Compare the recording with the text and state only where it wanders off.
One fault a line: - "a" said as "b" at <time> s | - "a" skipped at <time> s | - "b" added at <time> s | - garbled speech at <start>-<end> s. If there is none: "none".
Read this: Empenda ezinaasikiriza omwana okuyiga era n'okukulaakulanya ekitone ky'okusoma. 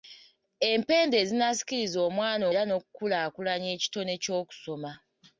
- "okuyiga" skipped at 2.5 s